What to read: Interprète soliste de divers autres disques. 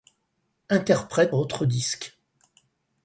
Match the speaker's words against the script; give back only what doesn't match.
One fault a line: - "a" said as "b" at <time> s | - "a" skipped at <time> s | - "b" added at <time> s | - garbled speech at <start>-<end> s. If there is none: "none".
- "soliste de divers" skipped at 1.4 s